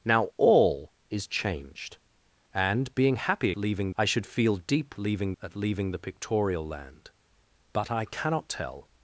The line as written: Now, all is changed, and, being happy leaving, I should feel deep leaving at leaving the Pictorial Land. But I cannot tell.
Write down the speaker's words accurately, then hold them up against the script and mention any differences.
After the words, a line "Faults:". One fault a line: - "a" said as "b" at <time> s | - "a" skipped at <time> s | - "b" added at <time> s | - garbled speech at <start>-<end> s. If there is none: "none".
Now, all is changed, and, being happy leaving, I should feel deep leaving at leaving the Pictorial Land. But I cannot tell.
Faults:
none